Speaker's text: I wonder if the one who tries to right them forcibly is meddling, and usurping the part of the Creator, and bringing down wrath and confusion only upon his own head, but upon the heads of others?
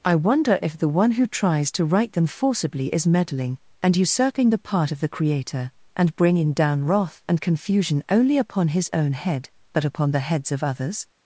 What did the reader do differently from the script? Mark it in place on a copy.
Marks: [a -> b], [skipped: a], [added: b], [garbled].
I wonder if the one who tries to right them forcibly is meddling, and usurping the part of the Creator, and bringing down wrath and confusion only upon his own head, but upon the heads of others?